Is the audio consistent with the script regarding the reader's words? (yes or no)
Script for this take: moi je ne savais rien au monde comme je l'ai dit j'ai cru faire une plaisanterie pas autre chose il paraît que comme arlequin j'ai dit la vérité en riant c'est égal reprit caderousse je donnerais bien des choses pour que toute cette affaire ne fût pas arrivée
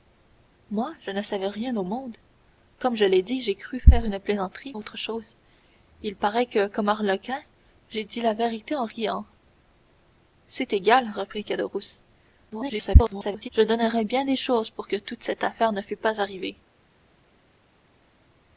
no